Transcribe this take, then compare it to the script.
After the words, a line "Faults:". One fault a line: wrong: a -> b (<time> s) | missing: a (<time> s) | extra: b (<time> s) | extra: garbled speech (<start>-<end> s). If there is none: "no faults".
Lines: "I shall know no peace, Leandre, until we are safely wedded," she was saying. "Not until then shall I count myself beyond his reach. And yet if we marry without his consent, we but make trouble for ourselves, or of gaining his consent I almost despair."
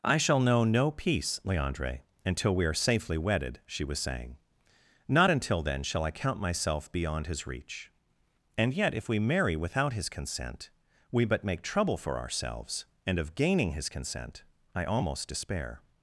"I shall know no peace, Leandre, until we are safely wedded," she was saying. "Not until then shall I count myself beyond his reach. And yet if we marry without his consent, we but make trouble for ourselves, and of gaining his consent I almost despair."
Faults:
wrong: or -> and (13.1 s)